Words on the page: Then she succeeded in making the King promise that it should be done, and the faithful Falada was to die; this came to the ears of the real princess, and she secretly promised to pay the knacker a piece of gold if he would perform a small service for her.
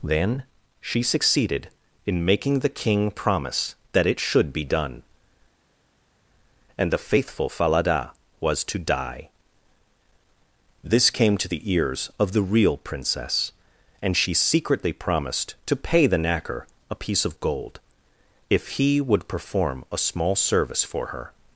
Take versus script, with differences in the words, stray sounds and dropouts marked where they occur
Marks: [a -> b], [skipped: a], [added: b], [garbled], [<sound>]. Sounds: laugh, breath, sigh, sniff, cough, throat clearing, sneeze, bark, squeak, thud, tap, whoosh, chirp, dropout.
Then she succeeded in making the King promise that it should be done, and the faithful Falada was to die; this came to the ears of the real princess, and she secretly promised to pay the knacker a piece of gold if he would perform a small service for her.